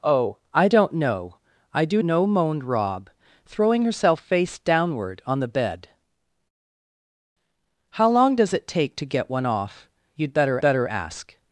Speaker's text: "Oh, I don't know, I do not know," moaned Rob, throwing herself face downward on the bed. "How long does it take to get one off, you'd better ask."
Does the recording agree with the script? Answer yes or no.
no